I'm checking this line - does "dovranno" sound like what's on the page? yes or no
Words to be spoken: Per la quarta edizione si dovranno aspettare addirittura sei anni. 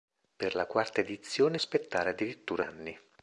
no